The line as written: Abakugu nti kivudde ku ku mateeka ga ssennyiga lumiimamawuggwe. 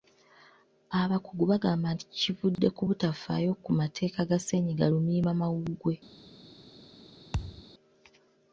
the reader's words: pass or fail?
fail